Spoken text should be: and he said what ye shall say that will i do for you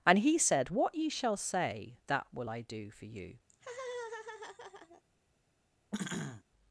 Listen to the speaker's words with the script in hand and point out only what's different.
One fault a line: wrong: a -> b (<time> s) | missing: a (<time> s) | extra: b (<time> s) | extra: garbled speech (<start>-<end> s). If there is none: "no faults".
no faults